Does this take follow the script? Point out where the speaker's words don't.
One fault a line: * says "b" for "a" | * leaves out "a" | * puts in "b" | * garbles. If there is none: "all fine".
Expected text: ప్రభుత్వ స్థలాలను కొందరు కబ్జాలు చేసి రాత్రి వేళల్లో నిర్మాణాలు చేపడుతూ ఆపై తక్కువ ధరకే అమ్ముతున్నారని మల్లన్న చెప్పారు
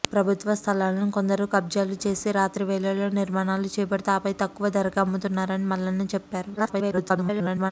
* garbles